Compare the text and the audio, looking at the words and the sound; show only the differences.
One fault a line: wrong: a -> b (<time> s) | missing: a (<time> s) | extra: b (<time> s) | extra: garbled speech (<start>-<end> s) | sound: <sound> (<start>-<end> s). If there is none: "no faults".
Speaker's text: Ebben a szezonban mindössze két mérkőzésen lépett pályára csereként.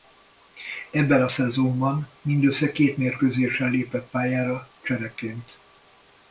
no faults